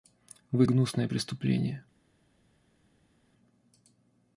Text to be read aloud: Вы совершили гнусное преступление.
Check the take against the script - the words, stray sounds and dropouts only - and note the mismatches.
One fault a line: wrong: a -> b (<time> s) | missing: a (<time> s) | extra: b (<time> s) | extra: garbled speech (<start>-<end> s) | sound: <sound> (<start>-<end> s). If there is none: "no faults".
missing: совершили (0.7 s)